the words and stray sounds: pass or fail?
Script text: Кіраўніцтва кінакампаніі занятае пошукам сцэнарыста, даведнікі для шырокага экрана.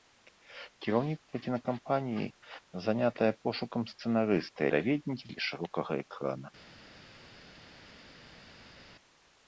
pass